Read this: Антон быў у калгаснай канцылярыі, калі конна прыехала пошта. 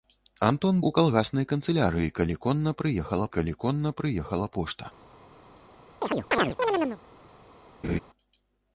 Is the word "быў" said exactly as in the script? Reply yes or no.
no